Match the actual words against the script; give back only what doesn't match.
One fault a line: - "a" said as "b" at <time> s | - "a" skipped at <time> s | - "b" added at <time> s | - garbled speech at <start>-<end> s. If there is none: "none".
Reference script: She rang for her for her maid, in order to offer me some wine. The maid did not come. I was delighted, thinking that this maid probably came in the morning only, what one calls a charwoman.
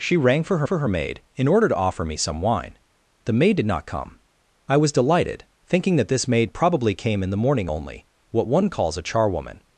none